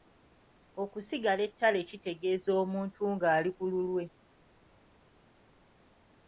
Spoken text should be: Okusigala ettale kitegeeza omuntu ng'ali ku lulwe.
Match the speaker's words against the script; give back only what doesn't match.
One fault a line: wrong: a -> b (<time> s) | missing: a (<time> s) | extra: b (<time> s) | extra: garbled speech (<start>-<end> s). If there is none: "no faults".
no faults